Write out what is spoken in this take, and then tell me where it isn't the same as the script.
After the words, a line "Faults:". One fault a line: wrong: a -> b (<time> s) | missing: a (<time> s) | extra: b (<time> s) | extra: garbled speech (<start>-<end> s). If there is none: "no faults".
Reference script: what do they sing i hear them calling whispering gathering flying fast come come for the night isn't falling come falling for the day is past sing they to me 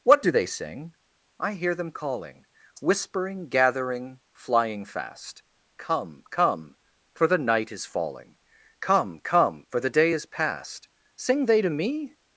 what do they sing i hear them calling whispering gathering flying fast come come for the night is falling come come for the day is past sing they to me
Faults:
wrong: isn't -> is (7.7 s)
wrong: falling -> come (9.2 s)